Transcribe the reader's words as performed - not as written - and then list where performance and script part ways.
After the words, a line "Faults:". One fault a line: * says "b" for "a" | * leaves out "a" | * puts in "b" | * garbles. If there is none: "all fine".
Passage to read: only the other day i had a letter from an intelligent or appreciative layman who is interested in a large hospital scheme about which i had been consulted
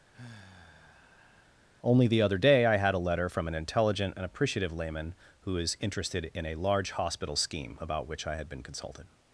only the other day i had a letter from an intelligent and appreciative layman who is interested in a large hospital scheme about which i had been consulted
Faults:
* says "and" for "or"